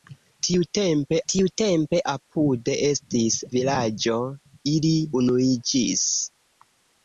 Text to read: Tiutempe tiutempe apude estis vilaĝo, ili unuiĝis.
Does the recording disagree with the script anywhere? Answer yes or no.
no